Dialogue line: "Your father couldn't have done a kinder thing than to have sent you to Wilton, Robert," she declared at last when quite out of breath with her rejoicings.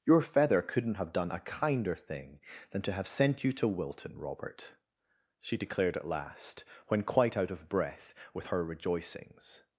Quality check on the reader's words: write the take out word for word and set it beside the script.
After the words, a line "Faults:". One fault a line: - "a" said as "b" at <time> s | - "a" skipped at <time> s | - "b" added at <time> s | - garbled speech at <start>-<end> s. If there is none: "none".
"Your feather couldn't have done a kinder thing than to have sent you to Wilton, Robert," she declared at last when quite out of breath with her rejoicings.
Faults:
- "father" said as "feather" at 0.2 s